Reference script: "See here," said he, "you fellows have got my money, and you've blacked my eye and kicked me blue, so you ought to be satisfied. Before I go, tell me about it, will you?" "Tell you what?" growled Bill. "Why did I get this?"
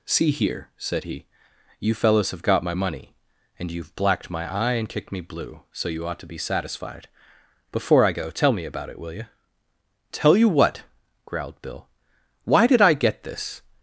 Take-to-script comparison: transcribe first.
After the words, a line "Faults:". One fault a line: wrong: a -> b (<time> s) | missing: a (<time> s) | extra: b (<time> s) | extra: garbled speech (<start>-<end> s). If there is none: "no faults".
"See here," said he, "you fellows have got my money, and you've blacked my eye and kicked me blue, so you ought to be satisfied. Before I go, tell me about it, will you?" "Tell you what?" growled Bill. "Why did I get this?"
Faults:
no faults